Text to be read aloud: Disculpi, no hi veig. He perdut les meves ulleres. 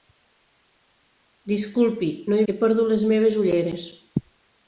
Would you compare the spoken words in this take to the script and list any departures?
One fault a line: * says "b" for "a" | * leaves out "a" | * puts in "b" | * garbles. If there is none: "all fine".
* leaves out "veig"